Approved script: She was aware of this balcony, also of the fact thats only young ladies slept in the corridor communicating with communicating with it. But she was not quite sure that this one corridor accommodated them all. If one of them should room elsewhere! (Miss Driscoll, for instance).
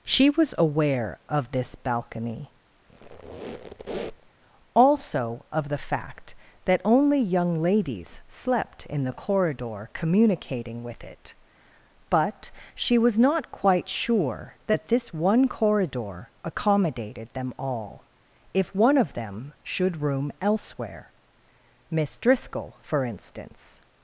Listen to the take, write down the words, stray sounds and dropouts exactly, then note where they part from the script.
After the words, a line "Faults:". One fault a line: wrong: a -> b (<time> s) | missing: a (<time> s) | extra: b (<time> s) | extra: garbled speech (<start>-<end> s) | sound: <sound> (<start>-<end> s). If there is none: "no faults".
She was aware of this balcony, also of the fact that only young ladies slept in the corridor communicating with it. But she was not quite sure that this one corridor accommodated them all. If one of them should room elsewhere! (Miss Driscoll, for instance).
Faults:
sound: squeak (2.9-4.3 s)
wrong: thats -> that (6.6 s)
missing: communicating with (11.0 s)